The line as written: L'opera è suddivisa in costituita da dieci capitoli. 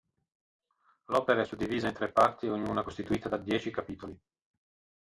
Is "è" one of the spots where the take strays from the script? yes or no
no